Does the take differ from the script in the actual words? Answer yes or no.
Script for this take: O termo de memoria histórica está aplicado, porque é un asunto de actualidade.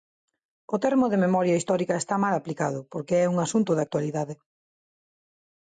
yes